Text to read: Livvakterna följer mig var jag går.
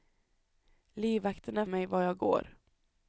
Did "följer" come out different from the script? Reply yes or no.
yes